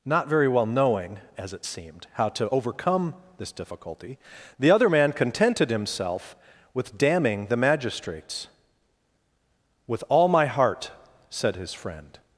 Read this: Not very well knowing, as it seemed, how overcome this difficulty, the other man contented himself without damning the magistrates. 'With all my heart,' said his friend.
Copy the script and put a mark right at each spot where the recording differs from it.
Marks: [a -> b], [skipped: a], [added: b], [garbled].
Not very well knowing, as it seemed, how [added: to] overcome this difficulty, the other man contented himself [without -> with] damning the magistrates. 'With all my heart,' said his friend.